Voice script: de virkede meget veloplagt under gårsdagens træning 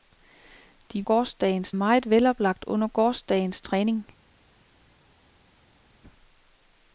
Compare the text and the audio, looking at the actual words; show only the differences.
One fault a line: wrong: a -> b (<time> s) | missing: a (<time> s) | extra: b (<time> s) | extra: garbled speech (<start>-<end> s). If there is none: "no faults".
wrong: virkede -> gårsdagens (1.0 s)